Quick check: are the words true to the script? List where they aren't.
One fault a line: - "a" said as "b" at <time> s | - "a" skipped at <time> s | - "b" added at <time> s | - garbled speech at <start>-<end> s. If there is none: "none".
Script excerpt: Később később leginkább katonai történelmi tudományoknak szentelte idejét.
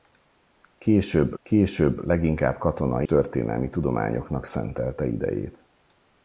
none